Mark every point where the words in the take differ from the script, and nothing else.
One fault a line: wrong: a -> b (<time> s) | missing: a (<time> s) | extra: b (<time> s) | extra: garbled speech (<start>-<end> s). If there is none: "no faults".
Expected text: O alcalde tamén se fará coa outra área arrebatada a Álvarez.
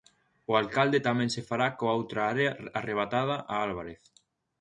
no faults